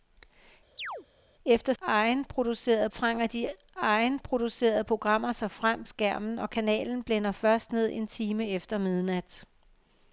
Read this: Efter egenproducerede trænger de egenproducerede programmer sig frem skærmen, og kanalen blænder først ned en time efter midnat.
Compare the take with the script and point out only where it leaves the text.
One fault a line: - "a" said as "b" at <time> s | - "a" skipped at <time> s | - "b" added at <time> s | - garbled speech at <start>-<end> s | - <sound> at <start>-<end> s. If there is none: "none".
- chirp at 0.8-1.1 s